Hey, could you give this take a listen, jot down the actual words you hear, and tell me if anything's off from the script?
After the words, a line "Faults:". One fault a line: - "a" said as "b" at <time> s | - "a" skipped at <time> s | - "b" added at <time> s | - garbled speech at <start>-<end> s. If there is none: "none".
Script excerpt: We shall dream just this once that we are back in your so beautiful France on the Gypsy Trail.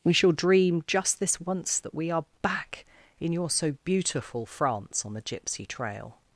We shall dream just this once that we are back in your so beautiful France on the Gypsy Trail.
Faults:
none